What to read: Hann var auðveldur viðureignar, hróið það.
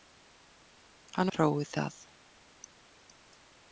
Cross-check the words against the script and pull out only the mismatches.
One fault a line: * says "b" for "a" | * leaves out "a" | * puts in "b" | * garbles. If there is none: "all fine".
* leaves out "var auðveldur viðureignar"